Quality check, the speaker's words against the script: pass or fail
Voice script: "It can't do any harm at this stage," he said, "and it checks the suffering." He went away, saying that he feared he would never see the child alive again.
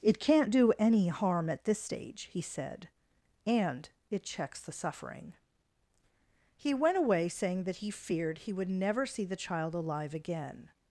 pass